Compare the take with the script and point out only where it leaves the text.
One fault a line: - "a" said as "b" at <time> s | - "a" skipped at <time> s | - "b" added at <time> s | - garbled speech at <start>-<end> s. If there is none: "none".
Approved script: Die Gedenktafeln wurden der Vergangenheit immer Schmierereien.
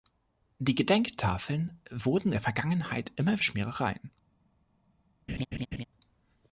none